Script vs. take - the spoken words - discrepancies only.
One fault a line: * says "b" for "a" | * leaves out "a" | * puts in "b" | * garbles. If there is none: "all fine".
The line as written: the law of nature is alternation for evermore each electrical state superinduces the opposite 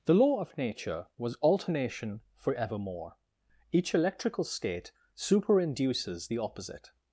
* says "was" for "is"